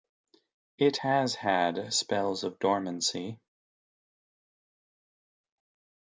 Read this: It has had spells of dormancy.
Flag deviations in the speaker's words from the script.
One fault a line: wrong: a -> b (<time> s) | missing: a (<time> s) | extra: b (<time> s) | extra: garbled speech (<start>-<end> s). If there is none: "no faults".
no faults